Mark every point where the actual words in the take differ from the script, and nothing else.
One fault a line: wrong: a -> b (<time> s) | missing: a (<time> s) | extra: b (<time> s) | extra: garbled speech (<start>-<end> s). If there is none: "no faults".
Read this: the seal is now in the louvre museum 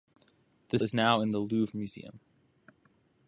missing: seal (0.8 s)